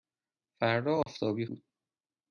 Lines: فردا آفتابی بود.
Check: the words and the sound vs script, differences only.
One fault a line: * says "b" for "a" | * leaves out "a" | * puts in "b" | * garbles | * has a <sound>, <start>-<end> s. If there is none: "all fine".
* has a dropout, 1.0-1.1 s